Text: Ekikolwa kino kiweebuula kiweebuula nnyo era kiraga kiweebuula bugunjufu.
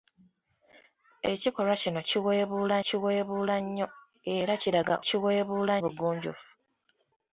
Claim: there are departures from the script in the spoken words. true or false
false